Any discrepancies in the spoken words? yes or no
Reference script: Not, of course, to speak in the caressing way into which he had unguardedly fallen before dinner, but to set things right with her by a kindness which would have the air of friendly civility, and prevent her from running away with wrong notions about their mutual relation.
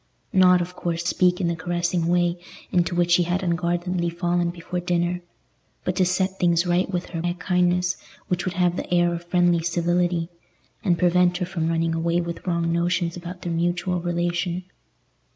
yes